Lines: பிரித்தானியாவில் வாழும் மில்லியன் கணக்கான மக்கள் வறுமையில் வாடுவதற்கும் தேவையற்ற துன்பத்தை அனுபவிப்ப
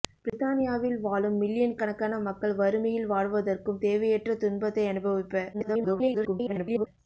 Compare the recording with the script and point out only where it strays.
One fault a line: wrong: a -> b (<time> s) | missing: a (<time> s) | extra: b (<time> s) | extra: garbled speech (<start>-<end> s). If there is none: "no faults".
extra: garbled speech (5.5-6.9 s)